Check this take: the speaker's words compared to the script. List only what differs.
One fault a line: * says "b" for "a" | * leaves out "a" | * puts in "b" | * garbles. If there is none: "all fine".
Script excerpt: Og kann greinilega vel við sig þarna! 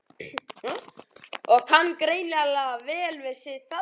all fine